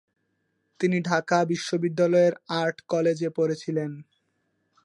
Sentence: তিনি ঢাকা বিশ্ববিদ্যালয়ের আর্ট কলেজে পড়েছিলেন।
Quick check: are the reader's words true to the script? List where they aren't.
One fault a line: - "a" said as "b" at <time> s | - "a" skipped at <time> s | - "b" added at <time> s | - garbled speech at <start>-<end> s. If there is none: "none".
none